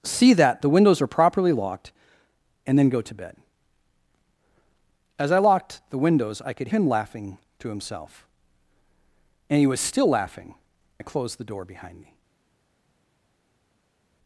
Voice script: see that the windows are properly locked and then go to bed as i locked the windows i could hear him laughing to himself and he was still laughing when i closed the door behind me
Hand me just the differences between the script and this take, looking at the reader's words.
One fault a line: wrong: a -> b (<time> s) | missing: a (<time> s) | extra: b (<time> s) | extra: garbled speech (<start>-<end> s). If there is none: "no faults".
missing: hear (6.7 s)
missing: when (10.6 s)